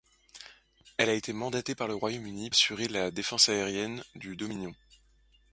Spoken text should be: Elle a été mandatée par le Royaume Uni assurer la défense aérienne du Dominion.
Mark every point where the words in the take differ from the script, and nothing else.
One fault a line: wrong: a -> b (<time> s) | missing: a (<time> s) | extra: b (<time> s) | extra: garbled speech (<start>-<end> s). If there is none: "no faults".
no faults